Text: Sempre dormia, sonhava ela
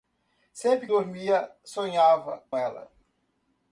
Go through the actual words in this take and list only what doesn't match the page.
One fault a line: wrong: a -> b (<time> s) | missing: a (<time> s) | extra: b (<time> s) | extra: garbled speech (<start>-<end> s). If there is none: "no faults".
no faults